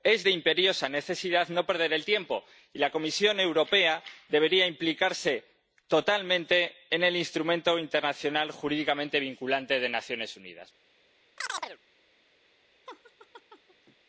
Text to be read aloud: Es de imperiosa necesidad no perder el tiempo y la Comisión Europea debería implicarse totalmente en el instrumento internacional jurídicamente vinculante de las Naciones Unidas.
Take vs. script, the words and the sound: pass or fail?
fail